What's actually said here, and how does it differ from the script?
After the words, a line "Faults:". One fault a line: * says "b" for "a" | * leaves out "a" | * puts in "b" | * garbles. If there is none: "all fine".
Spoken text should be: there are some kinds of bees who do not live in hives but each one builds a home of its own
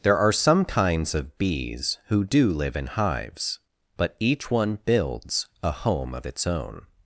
there are some kinds of bees who do live in hives but each one builds a home of its own
Faults:
* leaves out "not"